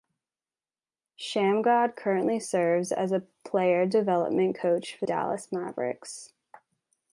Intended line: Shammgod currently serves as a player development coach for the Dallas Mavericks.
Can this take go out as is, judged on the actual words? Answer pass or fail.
fail